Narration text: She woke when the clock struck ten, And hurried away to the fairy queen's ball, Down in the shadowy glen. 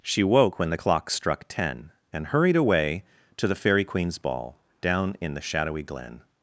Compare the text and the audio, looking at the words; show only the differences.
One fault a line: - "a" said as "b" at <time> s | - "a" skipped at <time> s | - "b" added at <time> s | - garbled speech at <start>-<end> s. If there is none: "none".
none